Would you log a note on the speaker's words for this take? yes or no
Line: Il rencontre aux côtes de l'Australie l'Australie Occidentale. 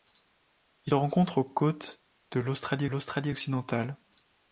no